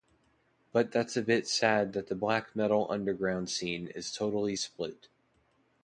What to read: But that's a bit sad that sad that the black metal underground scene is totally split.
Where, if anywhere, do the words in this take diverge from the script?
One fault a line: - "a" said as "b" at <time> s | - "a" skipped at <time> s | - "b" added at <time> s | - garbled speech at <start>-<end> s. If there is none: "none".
- "sad that" skipped at 2.1 s